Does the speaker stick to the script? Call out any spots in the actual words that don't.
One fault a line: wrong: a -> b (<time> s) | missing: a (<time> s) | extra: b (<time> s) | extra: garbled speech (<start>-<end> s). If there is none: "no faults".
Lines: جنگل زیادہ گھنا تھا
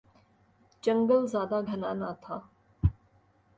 extra: نہ (2.0 s)